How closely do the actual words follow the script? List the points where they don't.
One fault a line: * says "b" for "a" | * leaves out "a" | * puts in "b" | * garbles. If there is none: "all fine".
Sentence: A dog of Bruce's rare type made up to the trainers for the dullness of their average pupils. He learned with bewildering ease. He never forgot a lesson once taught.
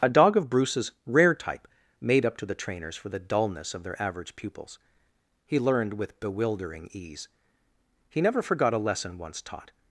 all fine